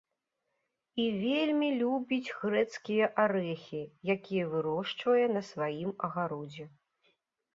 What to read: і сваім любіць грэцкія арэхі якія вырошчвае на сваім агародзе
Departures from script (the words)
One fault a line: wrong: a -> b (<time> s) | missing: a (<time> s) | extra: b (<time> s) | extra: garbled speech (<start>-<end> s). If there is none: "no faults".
wrong: сваім -> вельмі (1.2 s)